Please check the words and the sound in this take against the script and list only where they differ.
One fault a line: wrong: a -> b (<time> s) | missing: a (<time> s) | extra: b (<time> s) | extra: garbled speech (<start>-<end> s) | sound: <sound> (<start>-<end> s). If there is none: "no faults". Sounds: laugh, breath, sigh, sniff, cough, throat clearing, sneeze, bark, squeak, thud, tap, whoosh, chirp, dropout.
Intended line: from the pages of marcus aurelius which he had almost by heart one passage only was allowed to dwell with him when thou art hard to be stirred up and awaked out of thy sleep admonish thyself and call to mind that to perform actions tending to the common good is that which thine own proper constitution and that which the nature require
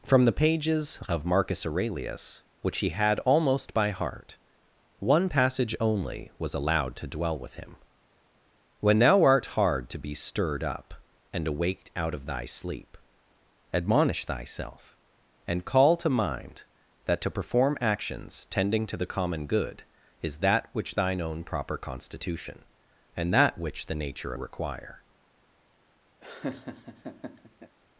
sound: laugh (26.2-27.8 s)